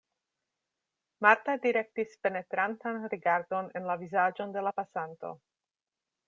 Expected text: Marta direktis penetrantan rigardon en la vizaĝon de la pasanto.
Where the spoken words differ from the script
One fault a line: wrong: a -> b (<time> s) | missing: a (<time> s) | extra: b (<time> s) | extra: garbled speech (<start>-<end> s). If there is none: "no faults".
no faults